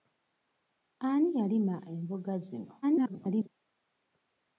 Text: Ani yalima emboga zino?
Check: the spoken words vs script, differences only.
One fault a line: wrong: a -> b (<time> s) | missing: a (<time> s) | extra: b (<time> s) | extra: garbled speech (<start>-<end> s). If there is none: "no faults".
extra: garbled speech (2.8-3.5 s)